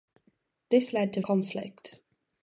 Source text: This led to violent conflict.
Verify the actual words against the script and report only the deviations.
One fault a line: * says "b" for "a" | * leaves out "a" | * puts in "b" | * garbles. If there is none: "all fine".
* leaves out "violent"